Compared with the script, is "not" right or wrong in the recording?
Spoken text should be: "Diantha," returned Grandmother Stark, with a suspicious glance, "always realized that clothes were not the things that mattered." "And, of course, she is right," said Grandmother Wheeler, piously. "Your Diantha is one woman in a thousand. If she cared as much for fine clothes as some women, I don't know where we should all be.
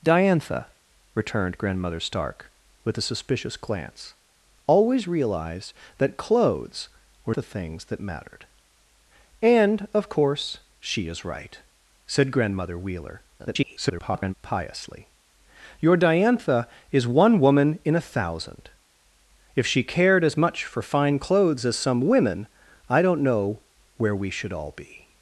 wrong